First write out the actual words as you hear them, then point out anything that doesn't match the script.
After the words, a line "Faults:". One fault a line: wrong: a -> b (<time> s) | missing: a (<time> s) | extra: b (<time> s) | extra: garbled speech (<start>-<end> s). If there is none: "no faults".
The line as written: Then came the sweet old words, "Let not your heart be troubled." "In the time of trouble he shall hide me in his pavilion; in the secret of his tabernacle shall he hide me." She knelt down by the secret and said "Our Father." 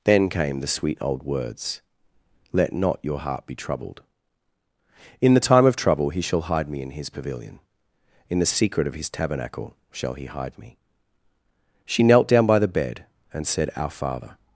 Then came the sweet old words, "Let not your heart be troubled." "In the time of trouble he shall hide me in his pavilion; in the secret of his tabernacle shall he hide me." She knelt down by the bed and said "Our Father."
Faults:
wrong: secret -> bed (12.7 s)